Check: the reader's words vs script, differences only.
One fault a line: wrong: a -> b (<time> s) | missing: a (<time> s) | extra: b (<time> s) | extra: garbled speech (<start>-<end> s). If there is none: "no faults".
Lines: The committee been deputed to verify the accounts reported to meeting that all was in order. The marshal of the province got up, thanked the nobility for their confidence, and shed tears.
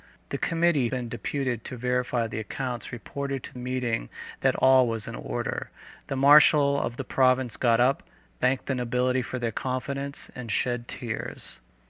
no faults